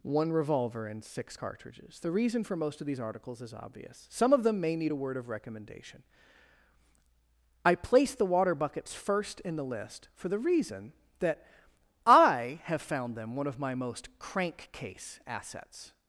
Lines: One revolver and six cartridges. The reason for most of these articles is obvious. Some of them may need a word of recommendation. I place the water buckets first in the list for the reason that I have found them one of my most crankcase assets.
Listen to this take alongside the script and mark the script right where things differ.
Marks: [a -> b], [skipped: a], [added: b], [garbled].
One revolver and six cartridges. The reason for most of these articles is obvious. Some of them may need a word of recommendation. I place the water buckets first in the list for the reason that I have found them one of my most crankcase assets.